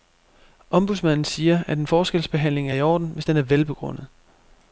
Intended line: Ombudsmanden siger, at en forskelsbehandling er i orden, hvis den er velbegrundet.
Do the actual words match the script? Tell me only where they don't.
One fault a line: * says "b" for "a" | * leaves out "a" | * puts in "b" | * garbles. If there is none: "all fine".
all fine